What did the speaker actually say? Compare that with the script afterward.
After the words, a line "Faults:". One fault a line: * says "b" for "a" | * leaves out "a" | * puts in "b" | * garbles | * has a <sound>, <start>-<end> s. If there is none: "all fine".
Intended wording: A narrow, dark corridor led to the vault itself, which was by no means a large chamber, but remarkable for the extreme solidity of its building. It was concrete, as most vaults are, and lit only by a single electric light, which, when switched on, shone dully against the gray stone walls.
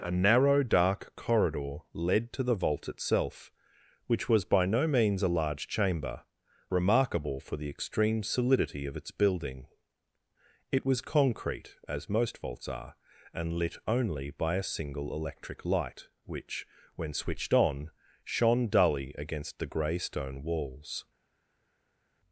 A narrow, dark corridor led to the vault itself, which was by no means a large chamber, remarkable for the extreme solidity of its building. It was concrete, as most vaults are, and lit only by a single electric light, which, when switched on, shone dully against the gray stone walls.
Faults:
* leaves out "but"